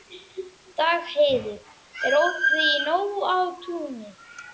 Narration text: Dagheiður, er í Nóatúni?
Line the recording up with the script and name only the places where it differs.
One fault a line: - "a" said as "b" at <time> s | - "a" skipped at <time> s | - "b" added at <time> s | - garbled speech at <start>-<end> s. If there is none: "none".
- "opið" added at 2.2 s